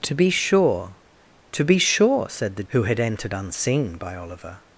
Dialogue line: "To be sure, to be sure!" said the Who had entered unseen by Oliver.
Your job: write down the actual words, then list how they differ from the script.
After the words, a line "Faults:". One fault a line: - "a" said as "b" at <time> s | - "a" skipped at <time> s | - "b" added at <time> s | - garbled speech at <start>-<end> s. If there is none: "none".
"To be sure, to be sure!" said the Who had entered unseen by Oliver.
Faults:
none